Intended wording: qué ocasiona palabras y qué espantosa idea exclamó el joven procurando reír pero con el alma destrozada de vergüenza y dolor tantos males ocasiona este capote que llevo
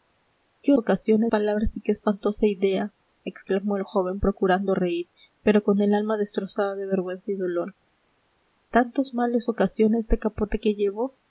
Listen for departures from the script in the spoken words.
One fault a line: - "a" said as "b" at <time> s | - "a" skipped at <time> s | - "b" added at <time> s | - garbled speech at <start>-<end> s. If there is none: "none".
none